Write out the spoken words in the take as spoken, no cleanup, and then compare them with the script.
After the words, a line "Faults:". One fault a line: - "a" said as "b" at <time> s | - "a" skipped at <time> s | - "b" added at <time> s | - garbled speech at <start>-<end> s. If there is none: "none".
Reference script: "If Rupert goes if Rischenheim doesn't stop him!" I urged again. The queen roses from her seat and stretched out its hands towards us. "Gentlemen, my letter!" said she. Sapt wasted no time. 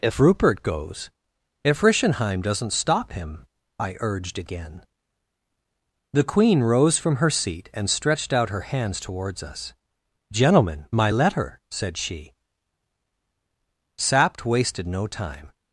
"If Rupert goes if Rischenheim doesn't stop him!" I urged again. The queen rose from her seat and stretched out her hands towards us. "Gentlemen, my letter!" said she. Sapt wasted no time.
Faults:
- "roses" said as "rose" at 6.6 s
- "its" said as "her" at 8.5 s